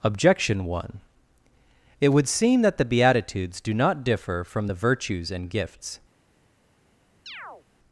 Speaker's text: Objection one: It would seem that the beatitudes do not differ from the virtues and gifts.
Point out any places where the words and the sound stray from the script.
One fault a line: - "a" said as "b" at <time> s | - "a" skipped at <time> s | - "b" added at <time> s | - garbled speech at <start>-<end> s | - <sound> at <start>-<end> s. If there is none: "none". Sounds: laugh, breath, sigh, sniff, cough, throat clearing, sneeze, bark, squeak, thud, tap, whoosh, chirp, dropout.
- chirp at 7.3-7.7 s